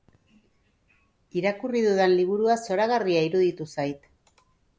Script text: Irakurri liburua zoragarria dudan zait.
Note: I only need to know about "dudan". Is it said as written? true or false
false